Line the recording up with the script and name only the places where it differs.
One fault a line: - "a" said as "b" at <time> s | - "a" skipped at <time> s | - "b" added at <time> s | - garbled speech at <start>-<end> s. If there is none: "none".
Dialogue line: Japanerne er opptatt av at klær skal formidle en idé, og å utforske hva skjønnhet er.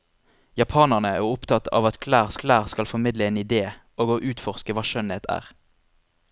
- "klær" added at 2.4 s